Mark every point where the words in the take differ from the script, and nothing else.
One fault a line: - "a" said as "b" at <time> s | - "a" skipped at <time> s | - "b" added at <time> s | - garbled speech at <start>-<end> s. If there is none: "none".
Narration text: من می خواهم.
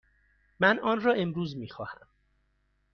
- "آن را امروز" added at 0.8 s